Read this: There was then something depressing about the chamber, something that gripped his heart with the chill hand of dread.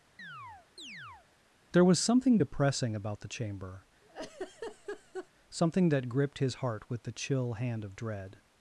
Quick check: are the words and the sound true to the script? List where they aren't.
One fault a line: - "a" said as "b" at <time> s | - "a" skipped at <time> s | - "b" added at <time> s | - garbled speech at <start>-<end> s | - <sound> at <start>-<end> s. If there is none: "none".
- chirp at 0.2-1.3 s
- "then" skipped at 2.0 s
- laugh at 4.0-5.3 s